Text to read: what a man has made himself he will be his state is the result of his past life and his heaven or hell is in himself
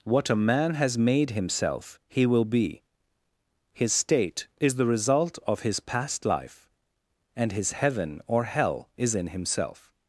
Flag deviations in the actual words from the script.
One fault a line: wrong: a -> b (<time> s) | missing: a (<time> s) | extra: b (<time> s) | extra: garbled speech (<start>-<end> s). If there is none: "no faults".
no faults